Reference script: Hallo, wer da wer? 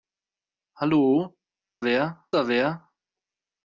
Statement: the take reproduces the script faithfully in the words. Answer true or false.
true